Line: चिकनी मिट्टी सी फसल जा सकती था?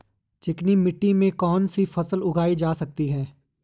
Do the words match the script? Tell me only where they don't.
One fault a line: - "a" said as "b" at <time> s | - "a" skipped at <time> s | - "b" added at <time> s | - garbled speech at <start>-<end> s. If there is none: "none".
- "में कौन" added at 1.1 s
- "उगाई" added at 2.2 s
- "था" said as "है" at 3.1 s